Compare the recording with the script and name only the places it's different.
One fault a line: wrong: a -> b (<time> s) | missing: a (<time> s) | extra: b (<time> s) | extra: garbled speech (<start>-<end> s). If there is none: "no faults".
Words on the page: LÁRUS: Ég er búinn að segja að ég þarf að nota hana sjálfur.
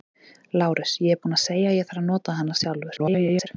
extra: garbled speech (3.0-3.5 s)